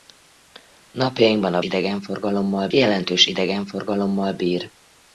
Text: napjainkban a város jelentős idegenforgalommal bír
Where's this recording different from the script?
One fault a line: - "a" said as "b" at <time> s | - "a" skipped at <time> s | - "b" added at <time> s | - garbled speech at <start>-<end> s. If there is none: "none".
- "város" said as "idegenforgalommal" at 1.6 s